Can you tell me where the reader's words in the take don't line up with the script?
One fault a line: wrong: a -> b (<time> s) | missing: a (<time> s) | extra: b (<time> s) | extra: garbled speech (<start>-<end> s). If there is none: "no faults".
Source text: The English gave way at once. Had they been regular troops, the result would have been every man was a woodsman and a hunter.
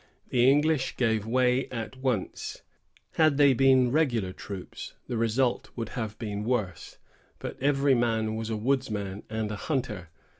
extra: worse but (6.4 s)